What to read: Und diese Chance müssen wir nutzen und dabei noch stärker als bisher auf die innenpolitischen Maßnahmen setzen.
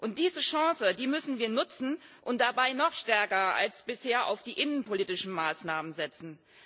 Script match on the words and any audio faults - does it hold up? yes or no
yes